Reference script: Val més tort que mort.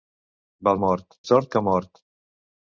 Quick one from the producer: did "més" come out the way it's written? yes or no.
no